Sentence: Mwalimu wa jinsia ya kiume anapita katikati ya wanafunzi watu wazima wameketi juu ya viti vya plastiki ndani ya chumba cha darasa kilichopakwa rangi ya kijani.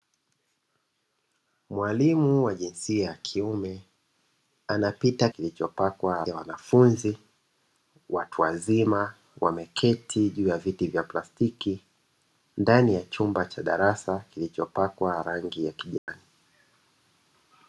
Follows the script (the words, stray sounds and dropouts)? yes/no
no